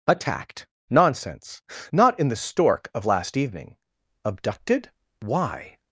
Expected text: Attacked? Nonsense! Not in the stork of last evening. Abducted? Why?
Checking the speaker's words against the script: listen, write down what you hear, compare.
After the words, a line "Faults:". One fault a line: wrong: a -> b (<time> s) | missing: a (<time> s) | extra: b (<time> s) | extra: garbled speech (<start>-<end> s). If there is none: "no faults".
Attacked? Nonsense! Not in the stork of last evening. Abducted? Why?
Faults:
no faults